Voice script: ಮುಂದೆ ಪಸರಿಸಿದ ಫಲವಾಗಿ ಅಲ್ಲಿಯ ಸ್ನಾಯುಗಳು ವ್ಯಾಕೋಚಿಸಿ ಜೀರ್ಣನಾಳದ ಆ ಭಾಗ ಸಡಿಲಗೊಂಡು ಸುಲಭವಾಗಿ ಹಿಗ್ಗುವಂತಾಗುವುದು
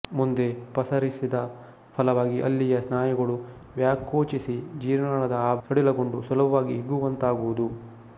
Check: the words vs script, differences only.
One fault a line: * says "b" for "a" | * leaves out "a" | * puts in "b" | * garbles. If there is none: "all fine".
* leaves out "ಭಾಗ"